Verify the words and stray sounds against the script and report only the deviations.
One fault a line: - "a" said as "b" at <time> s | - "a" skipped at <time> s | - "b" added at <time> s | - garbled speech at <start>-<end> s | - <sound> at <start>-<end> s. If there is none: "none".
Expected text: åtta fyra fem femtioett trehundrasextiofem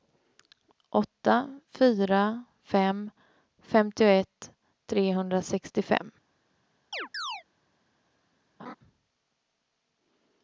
- chirp at 6.9-7.4 s
- laugh at 8.6-8.7 s